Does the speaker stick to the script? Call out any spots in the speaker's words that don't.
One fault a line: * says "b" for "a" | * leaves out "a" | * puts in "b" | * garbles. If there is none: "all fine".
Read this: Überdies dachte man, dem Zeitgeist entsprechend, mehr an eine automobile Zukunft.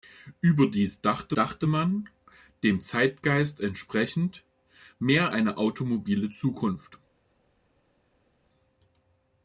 * puts in "dachte"
* leaves out "an"